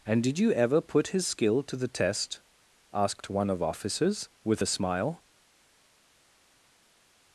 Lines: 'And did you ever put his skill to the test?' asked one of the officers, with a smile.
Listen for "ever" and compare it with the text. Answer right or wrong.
right